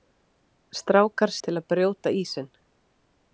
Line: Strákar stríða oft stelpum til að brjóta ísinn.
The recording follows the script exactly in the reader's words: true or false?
false